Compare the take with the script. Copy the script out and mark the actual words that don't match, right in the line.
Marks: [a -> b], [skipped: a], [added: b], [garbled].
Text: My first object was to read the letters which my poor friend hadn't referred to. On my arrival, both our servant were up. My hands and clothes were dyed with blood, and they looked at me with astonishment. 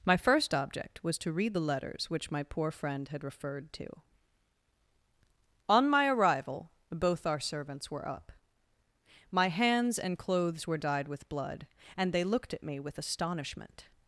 My first object was to read the letters which my poor friend [hadn't -> had] referred to. On my arrival, both our [servant -> servants] were up. My hands and clothes were dyed with blood, and they looked at me with astonishment.